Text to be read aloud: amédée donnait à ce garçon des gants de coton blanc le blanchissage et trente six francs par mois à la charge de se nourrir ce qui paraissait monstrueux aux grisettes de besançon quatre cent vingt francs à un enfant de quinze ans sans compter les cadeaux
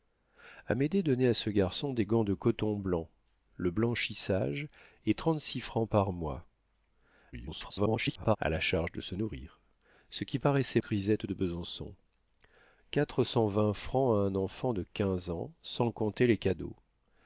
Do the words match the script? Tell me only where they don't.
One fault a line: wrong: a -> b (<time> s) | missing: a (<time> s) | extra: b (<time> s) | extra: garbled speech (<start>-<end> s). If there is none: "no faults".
extra: garbled speech (7.3-8.4 s)
missing: monstrueux aux (10.8 s)